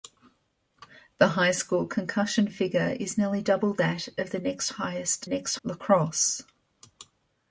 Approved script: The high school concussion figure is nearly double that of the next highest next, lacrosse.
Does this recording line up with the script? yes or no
yes